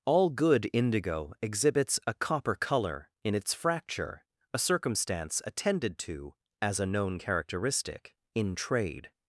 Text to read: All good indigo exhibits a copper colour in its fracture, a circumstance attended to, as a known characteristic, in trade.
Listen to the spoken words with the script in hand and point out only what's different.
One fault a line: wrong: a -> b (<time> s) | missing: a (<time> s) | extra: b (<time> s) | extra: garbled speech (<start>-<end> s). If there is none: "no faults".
no faults